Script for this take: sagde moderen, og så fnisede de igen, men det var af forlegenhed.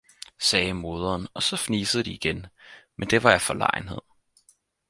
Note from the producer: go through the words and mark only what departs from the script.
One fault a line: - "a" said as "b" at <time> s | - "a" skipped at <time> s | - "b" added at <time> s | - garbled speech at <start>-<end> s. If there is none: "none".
none